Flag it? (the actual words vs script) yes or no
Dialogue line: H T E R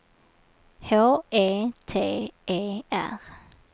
yes